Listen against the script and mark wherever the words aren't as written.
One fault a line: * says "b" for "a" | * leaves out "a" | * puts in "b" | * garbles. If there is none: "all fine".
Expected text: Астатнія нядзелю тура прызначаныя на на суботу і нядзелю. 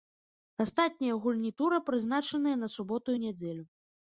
* says "гульні" for "нядзелю"
* leaves out "на"